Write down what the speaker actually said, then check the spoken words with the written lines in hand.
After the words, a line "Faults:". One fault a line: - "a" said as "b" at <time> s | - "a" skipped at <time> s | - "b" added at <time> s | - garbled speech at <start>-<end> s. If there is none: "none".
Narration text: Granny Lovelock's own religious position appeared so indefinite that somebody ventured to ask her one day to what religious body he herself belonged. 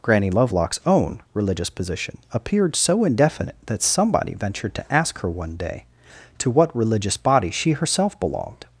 Granny Lovelock's own religious position appeared so indefinite that somebody ventured to ask her one day to what religious body she herself belonged.
Faults:
- "he" said as "she" at 7.5 s